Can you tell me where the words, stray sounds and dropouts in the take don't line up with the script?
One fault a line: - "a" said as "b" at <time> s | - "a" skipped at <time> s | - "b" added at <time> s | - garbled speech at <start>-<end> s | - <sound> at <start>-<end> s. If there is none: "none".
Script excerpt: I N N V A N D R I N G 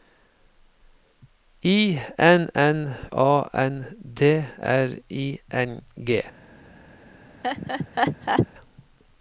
- "V" skipped at 3.0 s
- laugh at 7.4-8.5 s